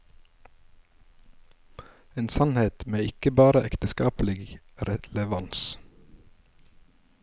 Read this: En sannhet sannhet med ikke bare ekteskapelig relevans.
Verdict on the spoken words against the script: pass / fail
fail